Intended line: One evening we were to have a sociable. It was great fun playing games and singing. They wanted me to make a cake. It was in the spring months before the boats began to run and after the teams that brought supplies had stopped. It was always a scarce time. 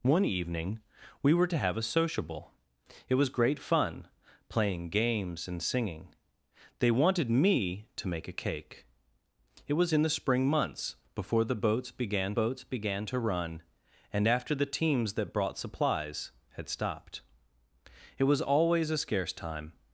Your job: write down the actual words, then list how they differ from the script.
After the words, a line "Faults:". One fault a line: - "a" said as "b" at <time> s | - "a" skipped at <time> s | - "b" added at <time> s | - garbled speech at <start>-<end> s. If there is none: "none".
One evening we were to have a sociable. It was great fun playing games and singing. They wanted me to make a cake. It was in the spring months before the boats began boats began to run and after the teams that brought supplies had stopped. It was always a scarce time.
Faults:
- "boats began" added at 12.4 s